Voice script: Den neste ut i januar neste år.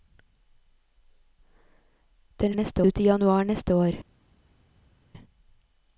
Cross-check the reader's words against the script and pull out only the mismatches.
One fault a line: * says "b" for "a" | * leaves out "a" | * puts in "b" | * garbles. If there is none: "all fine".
all fine